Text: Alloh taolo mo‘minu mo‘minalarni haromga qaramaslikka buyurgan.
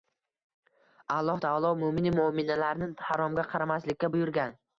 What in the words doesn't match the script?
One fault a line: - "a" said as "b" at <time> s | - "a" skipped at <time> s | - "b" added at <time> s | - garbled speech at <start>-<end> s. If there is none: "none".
none